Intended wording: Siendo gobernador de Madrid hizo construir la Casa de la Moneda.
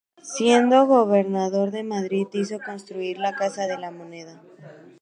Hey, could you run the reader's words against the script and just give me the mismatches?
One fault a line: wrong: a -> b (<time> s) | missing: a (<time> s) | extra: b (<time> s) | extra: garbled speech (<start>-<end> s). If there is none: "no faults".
no faults